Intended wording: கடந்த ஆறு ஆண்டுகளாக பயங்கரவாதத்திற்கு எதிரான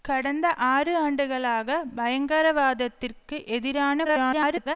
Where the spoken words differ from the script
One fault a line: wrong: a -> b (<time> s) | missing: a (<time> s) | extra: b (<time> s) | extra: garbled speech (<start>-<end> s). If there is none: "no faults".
extra: garbled speech (4.0-4.8 s)